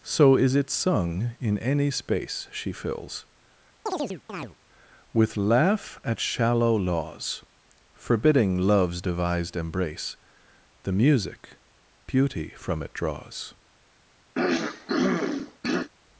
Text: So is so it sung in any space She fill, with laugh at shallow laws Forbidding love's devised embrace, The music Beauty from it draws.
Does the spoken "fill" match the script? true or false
false